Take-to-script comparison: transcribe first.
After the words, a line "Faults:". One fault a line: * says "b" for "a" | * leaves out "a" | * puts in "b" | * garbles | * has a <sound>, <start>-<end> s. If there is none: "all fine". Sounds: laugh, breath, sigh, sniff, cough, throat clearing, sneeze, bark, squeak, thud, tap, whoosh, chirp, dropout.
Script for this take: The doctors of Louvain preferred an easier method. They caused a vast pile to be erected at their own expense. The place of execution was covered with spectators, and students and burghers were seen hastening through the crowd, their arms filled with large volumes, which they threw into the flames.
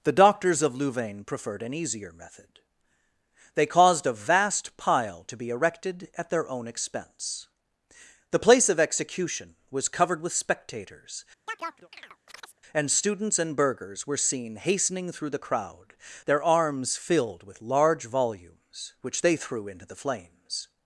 The doctors of Louvain preferred an easier method. They caused a vast pile to be erected at their own expense. The place of execution was covered with spectators, and students and burghers were seen hastening through the crowd, their arms filled with large volumes, which they threw into the flames.
Faults:
* has a chirp, 11.5-12.6 s